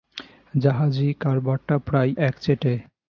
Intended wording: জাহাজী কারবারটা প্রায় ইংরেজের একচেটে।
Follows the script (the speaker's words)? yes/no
no